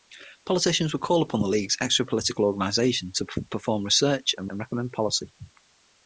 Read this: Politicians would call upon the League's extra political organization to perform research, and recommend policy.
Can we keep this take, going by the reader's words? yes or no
no